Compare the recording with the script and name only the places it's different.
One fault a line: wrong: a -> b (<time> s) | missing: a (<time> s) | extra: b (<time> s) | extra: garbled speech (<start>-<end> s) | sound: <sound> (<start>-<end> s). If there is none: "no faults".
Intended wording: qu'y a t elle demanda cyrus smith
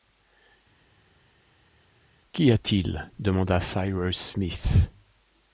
wrong: elle -> il (2.8 s)